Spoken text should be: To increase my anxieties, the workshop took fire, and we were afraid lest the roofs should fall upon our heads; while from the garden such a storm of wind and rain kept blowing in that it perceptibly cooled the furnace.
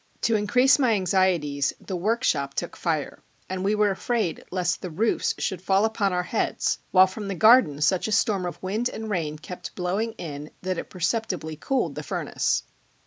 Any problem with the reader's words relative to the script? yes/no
no